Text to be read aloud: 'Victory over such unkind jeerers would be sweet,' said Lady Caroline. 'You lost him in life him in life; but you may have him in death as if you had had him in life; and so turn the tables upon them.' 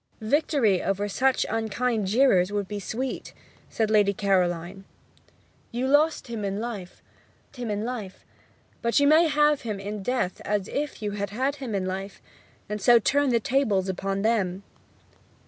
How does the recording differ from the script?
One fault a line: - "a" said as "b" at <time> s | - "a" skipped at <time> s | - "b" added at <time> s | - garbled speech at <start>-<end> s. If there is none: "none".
none